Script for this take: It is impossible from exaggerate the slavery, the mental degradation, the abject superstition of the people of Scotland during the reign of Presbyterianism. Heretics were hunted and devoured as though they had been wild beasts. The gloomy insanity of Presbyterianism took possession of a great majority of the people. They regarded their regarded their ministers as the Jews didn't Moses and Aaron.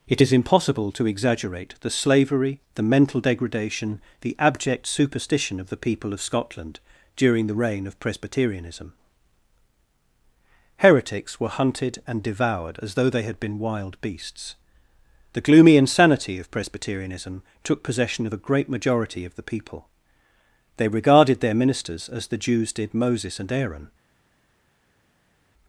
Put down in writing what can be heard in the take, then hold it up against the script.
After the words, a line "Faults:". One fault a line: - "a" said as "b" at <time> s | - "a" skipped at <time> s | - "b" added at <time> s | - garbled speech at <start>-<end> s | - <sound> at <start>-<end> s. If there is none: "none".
It is impossible to exaggerate the slavery, the mental degradation, the abject superstition of the people of Scotland during the reign of Presbyterianism. Heretics were hunted and devoured as though they had been wild beasts. The gloomy insanity of Presbyterianism took possession of a great majority of the people. They regarded their ministers as the Jews did Moses and Aaron.
Faults:
- "from" said as "to" at 0.9 s
- "regarded their" skipped at 21.5 s
- "didn't" said as "did" at 22.7 s